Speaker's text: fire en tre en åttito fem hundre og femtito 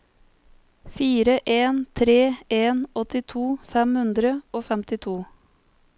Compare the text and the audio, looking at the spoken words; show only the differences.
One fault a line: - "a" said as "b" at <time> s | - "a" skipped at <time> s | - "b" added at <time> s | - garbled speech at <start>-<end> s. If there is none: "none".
none